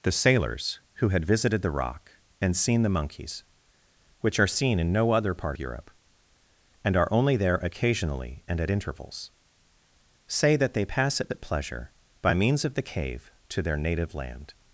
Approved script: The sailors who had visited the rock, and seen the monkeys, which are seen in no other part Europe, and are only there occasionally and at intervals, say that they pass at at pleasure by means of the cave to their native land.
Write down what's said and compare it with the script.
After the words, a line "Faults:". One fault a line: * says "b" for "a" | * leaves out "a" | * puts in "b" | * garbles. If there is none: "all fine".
The sailors who had visited the rock, and seen the monkeys, which are seen in no other part Europe, and are only there occasionally and at intervals, say that they pass at at pleasure by means of the cave to their native land.
Faults:
all fine